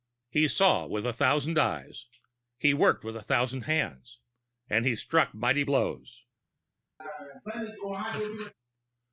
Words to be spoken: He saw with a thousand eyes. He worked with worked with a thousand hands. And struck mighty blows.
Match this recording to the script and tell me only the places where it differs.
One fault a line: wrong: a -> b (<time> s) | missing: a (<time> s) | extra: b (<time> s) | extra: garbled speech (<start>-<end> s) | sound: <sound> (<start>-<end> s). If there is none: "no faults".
missing: worked with (3.1 s)
extra: he (4.8 s)
sound: laugh (7.0-8.5 s)